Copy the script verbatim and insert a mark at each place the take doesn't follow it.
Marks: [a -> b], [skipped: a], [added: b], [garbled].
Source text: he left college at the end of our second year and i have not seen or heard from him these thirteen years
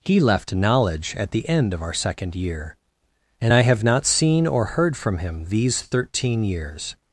he left [college -> knowledge] at the end of our second year and i have not seen or heard from him these thirteen years